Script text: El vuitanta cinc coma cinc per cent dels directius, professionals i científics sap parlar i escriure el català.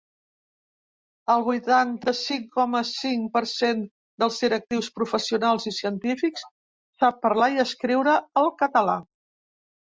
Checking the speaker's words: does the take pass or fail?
pass